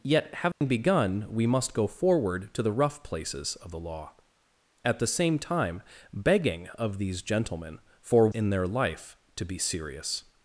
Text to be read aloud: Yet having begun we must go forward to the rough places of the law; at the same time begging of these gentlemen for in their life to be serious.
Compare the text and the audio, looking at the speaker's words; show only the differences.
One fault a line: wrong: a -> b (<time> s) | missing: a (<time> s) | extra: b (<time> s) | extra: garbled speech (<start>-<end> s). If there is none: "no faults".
no faults